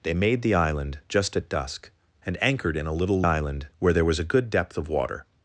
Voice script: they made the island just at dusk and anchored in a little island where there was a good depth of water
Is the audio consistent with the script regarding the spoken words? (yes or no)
yes